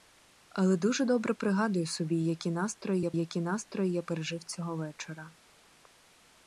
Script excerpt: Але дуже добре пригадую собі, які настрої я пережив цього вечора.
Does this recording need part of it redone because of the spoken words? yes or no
yes